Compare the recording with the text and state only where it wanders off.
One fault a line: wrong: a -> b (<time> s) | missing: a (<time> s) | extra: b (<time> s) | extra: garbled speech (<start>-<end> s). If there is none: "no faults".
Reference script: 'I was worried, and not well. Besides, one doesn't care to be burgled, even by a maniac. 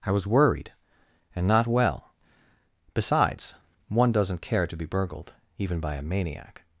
no faults